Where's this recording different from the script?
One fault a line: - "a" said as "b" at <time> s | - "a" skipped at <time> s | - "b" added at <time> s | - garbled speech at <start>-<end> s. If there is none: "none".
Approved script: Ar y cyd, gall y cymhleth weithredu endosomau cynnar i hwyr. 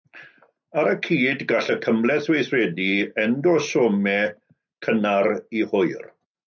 none